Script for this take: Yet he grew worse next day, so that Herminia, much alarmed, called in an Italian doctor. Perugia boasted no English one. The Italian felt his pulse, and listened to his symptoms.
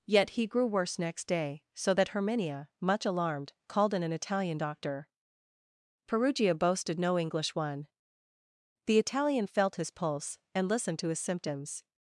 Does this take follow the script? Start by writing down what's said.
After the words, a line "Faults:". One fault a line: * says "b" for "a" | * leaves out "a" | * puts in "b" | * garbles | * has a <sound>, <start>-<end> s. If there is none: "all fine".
Yet he grew worse next day, so that Herminia, much alarmed, called in an Italian doctor. Perugia boasted no English one. The Italian felt his pulse, and listened to his symptoms.
Faults:
all fine